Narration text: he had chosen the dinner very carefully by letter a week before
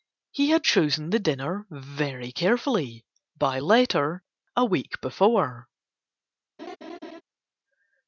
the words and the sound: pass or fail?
fail